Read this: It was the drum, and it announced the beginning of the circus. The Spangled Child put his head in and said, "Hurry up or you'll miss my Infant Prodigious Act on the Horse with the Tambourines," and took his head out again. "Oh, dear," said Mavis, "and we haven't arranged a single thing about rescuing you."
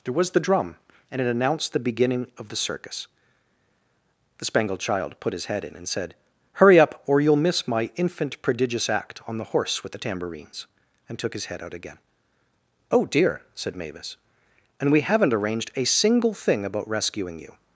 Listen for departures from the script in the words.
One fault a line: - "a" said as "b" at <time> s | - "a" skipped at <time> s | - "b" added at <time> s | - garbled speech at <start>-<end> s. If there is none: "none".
- "It" said as "There" at 0.0 s